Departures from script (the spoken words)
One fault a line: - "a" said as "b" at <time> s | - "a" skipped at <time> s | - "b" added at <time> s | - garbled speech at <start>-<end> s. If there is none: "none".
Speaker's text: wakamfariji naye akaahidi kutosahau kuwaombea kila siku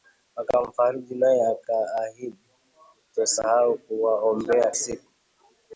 - "kila" skipped at 4.7 s